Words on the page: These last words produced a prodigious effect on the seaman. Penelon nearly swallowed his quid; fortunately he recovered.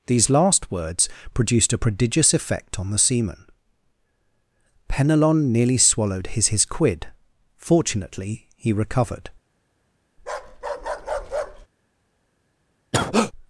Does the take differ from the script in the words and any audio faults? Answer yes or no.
yes